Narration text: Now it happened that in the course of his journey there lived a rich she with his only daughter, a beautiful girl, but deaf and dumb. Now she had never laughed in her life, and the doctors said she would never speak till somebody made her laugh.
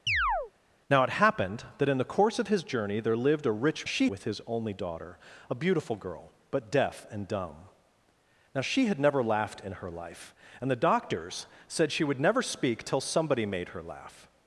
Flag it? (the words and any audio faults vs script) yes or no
yes